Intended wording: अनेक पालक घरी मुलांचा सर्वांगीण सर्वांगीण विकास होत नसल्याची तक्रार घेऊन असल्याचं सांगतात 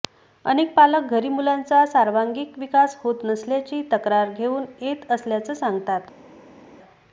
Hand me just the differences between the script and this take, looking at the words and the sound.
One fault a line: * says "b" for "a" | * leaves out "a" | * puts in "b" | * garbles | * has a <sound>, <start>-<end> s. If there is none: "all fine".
* leaves out "सर्वांगीण"
* puts in "येत"